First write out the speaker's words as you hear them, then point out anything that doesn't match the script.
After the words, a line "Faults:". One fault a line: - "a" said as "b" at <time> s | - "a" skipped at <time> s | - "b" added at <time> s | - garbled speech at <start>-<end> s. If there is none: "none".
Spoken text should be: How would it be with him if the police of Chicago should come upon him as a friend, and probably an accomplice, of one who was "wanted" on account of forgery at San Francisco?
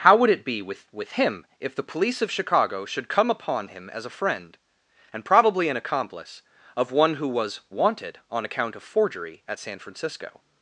How would it be with with him if the police of Chicago should come upon him as a friend, and probably an accomplice, of one who was "wanted" on account of forgery at San Francisco?
Faults:
- "with" added at 0.9 s